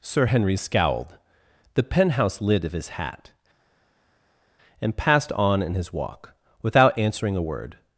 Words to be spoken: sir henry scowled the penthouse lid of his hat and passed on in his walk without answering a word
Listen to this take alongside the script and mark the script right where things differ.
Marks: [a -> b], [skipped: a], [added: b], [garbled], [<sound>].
sir henry scowled the penthouse lid of his hat and passed on in his walk without answering a word